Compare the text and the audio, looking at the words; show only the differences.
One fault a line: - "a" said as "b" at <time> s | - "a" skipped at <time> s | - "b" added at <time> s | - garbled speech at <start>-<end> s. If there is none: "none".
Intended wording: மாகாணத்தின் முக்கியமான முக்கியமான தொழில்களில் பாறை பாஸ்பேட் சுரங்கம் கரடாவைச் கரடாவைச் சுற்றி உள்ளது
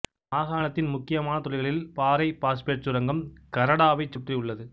- "முக்கியமான" skipped at 1.4 s
- "கரடாவைச்" skipped at 4.2 s